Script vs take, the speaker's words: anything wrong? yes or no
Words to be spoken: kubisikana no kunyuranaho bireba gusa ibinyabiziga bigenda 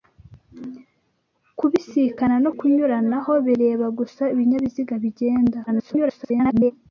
yes